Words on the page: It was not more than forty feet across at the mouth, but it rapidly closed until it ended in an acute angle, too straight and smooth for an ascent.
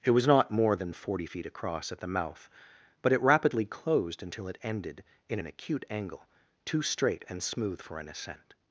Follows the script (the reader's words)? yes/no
yes